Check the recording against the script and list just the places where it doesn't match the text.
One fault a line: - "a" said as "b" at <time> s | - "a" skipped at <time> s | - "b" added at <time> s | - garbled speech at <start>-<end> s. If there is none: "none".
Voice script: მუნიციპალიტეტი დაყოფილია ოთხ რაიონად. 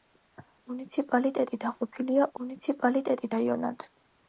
- "ოთხ" said as "მუნიციპალიტეტი" at 2.4 s